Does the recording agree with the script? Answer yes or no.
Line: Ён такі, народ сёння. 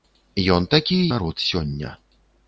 yes